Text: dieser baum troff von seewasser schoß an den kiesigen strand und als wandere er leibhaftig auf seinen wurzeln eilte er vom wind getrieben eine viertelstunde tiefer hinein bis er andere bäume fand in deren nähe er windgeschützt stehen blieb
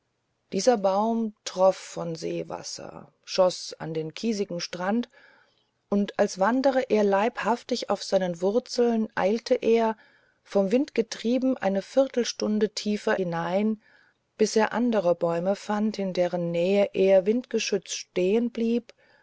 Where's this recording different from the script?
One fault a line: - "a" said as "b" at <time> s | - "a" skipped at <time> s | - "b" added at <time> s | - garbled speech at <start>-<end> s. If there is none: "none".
none